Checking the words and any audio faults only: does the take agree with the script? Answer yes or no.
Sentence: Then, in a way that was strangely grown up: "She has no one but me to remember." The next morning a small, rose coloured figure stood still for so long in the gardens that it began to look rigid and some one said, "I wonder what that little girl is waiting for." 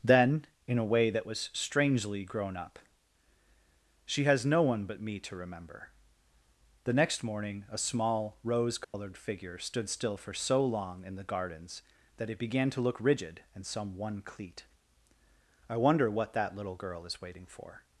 no